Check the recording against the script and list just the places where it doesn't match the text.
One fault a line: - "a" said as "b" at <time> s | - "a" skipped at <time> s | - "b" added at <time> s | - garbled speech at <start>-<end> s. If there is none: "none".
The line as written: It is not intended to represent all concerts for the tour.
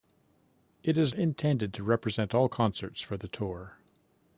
- "not" skipped at 1.1 s